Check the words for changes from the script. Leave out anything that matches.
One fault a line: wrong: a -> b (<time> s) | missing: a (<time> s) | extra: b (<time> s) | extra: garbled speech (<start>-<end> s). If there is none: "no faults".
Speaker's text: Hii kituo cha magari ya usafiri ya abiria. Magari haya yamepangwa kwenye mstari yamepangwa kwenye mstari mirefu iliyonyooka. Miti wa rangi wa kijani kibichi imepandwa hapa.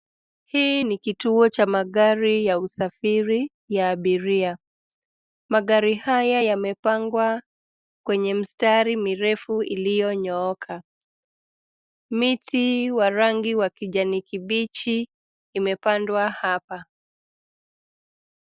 extra: ni (0.8 s)
missing: yamepangwa kwenye mstari (9.0 s)